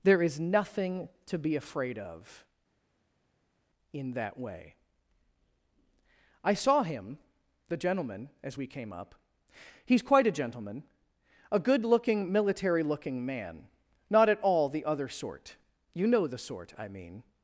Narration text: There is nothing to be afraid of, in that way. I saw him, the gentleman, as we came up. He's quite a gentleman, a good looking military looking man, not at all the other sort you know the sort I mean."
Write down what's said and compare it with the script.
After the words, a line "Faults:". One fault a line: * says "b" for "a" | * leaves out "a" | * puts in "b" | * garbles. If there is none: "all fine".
There is nothing to be afraid of, in that way. I saw him, the gentleman, as we came up. He's quite a gentleman, a good looking military looking man, not at all the other sort you know the sort I mean."
Faults:
all fine